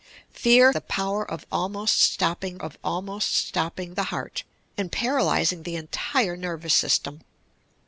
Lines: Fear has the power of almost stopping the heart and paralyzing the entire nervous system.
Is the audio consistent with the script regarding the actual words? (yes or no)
no